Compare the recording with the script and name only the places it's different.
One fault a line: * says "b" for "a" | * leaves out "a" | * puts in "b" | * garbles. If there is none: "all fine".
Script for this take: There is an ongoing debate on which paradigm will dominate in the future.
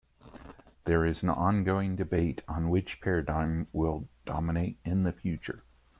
all fine